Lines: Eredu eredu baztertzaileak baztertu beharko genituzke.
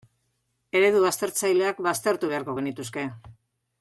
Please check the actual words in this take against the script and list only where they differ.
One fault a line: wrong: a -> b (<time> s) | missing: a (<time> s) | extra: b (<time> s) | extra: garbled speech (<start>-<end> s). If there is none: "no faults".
missing: eredu (1.0 s)